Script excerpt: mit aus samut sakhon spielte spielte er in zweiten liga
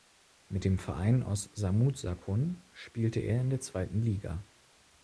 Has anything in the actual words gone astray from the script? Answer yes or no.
yes